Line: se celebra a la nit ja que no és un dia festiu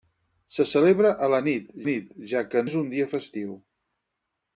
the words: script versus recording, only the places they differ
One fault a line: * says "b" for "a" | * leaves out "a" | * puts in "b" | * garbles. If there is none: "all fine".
* puts in "nit"
* leaves out "no"